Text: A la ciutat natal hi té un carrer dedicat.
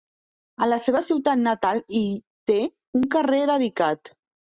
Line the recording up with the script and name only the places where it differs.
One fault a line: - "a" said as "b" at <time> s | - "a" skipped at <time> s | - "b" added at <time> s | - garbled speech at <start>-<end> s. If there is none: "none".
- "seva" added at 0.8 s